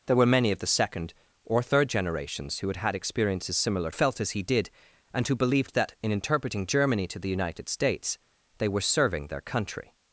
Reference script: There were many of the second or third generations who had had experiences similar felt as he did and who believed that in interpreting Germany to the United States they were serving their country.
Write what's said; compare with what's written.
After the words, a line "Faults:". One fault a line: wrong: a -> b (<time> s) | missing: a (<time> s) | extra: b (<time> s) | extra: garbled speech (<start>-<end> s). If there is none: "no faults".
There were many of the second or third generations who had had experiences similar felt as he did and who believed that in interpreting Germany to the United States they were serving their country.
Faults:
no faults